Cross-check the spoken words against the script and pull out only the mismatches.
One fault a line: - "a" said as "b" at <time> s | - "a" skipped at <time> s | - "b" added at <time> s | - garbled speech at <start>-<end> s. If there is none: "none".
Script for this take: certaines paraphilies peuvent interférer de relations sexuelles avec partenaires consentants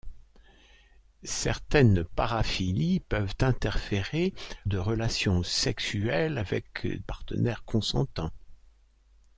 none